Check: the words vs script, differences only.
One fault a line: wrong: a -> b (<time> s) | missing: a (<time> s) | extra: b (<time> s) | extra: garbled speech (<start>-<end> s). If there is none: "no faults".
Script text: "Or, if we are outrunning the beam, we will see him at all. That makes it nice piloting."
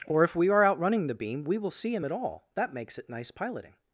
no faults